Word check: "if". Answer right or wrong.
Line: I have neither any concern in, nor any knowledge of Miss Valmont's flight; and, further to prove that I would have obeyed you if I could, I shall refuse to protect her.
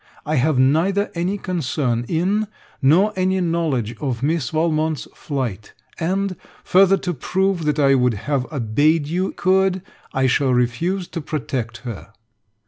wrong